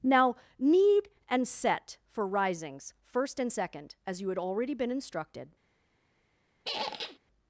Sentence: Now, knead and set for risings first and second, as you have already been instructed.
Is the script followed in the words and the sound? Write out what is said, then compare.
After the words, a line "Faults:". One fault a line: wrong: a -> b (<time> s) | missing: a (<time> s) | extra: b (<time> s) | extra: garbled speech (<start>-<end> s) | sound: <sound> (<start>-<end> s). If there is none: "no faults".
Now, knead and set for risings first and second, as you had already been instructed.
Faults:
wrong: have -> had (4.3 s)
sound: squeak (6.6-7.2 s)